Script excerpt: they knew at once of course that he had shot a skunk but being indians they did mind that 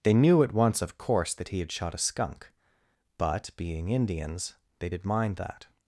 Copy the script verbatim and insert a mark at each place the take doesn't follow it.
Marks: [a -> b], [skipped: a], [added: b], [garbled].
they knew at once of course that he had shot a skunk but being indians they did mind that